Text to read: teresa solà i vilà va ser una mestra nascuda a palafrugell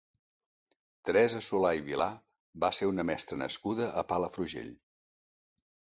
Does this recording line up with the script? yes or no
yes